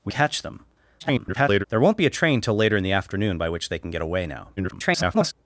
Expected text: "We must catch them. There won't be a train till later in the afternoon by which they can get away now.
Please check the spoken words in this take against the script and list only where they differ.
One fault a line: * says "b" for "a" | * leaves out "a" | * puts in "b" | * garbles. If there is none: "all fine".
* leaves out "must"
* garbles
* garbles